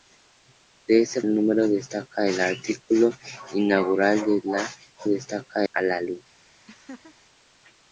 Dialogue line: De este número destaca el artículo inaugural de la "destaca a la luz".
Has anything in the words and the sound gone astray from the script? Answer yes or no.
yes